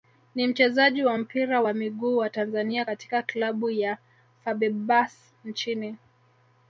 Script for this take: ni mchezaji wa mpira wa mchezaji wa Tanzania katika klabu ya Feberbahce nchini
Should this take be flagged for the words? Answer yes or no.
yes